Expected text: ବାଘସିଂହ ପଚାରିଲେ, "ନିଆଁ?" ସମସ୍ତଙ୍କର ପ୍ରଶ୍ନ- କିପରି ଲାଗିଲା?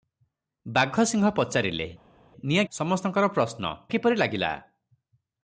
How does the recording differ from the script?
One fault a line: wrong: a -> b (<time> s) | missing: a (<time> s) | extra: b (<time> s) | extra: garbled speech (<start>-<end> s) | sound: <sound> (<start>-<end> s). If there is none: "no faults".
no faults